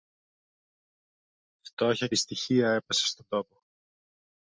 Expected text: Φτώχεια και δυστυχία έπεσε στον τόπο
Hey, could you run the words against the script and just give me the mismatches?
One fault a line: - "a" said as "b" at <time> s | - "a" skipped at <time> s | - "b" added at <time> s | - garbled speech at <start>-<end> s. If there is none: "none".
- "και" skipped at 2.1 s